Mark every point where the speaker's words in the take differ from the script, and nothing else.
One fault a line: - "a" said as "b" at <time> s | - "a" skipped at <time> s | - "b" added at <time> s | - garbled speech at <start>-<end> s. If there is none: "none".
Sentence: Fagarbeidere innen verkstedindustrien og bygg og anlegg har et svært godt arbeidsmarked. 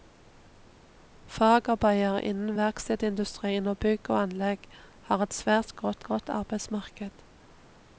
- "godt" added at 6.0 s